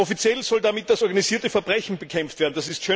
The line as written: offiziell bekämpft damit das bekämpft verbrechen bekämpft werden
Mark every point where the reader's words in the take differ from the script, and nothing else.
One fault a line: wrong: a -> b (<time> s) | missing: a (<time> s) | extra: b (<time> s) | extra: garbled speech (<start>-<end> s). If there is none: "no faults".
wrong: bekämpft -> soll (0.4 s)
wrong: bekämpft -> organisierte (1.0 s)